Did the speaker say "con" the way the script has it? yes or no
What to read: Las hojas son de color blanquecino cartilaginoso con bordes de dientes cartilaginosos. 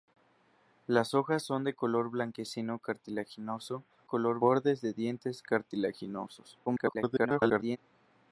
no